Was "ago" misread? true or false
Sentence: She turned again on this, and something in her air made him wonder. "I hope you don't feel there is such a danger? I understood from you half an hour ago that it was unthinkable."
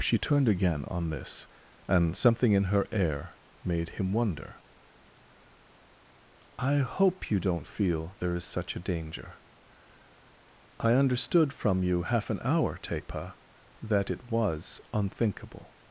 true